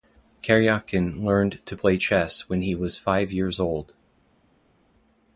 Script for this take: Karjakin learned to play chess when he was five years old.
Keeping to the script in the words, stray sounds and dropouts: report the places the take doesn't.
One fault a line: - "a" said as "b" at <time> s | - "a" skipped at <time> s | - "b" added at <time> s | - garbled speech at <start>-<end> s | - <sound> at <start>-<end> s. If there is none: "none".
none